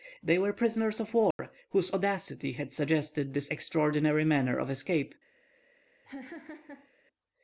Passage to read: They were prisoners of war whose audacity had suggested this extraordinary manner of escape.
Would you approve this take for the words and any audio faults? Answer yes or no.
no